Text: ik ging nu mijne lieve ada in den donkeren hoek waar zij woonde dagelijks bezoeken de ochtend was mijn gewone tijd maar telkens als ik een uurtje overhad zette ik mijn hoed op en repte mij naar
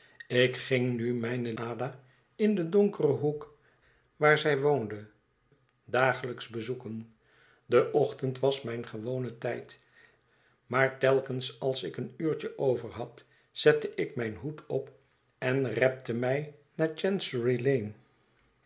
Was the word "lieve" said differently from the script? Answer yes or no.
yes